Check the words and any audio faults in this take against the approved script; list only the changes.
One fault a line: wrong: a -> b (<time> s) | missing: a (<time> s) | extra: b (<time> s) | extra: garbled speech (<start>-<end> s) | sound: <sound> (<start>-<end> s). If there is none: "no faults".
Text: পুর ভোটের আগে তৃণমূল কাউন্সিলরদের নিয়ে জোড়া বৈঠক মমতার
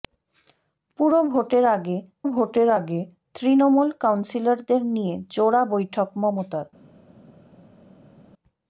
extra: ভোটের আগে (2.3 s)